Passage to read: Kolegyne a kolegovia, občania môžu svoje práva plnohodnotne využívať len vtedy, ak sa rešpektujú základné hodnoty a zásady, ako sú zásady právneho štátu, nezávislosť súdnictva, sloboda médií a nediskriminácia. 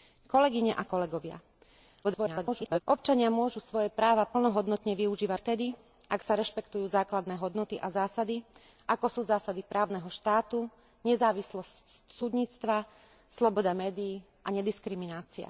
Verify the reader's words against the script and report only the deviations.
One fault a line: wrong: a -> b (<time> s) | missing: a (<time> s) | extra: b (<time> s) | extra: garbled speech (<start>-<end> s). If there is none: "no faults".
extra: garbled speech (2.0-2.8 s)
missing: len (5.4 s)